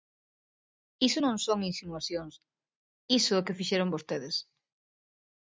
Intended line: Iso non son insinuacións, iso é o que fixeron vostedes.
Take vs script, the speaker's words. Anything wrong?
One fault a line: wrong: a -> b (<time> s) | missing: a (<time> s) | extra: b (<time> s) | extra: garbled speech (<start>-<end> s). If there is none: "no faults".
no faults